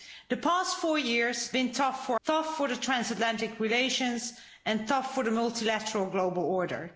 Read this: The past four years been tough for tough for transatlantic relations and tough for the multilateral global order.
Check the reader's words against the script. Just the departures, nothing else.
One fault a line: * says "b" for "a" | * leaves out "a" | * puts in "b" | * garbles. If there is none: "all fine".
all fine